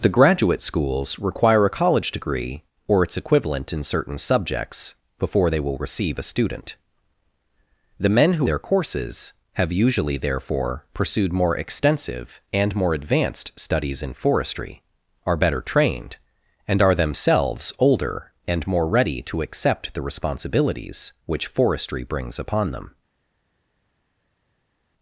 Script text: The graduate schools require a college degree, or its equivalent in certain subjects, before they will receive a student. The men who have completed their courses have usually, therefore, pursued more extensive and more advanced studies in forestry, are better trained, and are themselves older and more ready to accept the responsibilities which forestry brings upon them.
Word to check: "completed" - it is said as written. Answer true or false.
false